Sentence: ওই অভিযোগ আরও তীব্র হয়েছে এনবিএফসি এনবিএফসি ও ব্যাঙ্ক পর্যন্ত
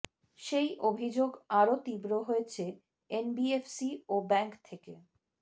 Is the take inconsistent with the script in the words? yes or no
yes